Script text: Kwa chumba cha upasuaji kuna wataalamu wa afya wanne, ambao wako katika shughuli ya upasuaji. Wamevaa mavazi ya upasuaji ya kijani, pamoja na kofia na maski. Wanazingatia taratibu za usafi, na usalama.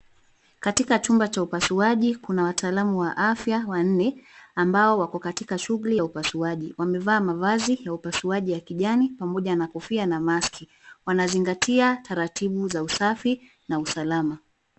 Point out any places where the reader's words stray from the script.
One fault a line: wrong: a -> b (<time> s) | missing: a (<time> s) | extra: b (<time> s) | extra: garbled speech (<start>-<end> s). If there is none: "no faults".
wrong: Kwa -> Katika (0.6 s)